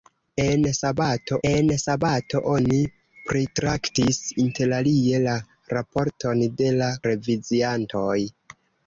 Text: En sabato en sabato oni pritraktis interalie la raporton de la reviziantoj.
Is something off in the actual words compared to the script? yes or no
no